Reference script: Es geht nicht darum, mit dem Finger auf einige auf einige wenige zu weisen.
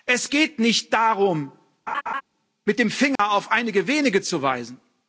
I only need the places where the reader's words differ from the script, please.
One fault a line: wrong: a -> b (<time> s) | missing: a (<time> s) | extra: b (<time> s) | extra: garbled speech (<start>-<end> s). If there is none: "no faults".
missing: auf einige (3.9 s)